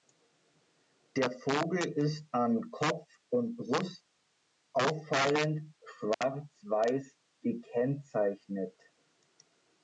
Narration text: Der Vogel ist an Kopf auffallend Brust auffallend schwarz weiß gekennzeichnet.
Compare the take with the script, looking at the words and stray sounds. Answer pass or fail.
fail